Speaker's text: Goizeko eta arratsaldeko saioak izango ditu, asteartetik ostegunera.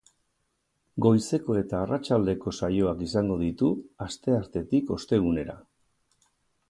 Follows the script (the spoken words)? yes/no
yes